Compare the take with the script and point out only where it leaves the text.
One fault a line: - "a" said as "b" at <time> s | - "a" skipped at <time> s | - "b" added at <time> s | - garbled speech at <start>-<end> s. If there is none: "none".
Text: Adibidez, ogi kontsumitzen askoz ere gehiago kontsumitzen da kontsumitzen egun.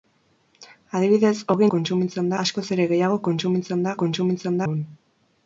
none